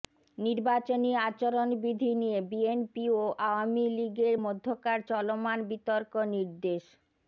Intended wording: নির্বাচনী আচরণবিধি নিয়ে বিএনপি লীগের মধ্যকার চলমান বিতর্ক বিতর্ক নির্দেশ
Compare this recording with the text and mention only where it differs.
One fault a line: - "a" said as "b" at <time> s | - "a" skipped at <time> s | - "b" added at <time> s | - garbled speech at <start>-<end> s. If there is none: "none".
- "ও আওয়ামী" added at 3.1 s
- "বিতর্ক" skipped at 6.1 s